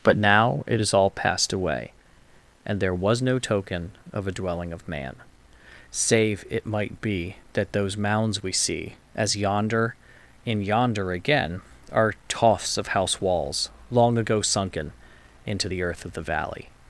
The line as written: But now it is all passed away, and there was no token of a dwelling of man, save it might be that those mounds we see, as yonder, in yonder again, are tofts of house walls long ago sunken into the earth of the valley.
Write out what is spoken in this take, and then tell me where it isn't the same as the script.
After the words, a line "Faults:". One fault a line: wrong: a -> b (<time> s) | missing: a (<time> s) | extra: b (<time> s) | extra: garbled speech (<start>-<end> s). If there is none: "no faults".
But now it is all passed away, and there was no token of a dwelling of man, save it might be that those mounds we see, as yonder, in yonder again, are tofts of house walls long ago sunken into the earth of the valley.
Faults:
no faults